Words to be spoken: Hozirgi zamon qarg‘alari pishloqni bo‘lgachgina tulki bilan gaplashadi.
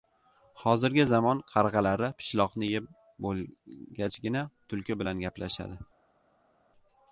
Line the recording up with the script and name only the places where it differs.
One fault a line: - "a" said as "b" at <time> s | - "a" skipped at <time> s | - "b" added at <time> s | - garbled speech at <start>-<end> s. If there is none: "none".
- "yeb" added at 2.7 s